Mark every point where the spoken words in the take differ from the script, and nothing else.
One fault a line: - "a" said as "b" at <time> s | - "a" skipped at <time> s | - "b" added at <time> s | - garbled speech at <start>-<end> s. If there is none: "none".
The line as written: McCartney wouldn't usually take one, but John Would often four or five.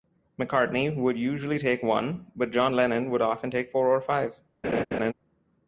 - "wouldn't" said as "would" at 0.9 s
- "Lennon" added at 2.7 s
- "take" added at 3.5 s